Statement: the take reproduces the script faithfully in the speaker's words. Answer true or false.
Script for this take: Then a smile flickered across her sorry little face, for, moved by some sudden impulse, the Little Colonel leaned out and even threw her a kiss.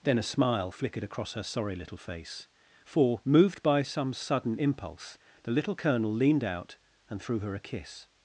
false